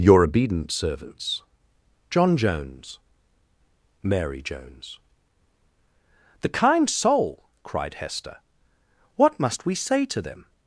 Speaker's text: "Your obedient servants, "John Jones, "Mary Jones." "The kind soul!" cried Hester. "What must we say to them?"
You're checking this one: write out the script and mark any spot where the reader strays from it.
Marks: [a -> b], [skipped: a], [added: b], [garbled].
"Your obedient servants, "John Jones, "Mary Jones." "The kind soul!" cried Hester. "What must we say to them?"